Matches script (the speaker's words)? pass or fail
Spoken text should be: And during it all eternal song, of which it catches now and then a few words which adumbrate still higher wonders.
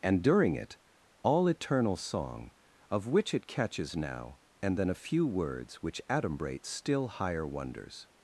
pass